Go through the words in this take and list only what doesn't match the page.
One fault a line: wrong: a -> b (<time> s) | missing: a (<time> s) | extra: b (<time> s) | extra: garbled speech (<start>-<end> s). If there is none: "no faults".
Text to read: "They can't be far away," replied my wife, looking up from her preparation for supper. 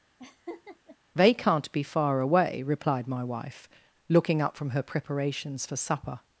wrong: preparation -> preparations (4.8 s)